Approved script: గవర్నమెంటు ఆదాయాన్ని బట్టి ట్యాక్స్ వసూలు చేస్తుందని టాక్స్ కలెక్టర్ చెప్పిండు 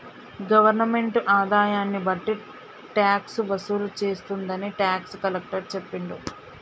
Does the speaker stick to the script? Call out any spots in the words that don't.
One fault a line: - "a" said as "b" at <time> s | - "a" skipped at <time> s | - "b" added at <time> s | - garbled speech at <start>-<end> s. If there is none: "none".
none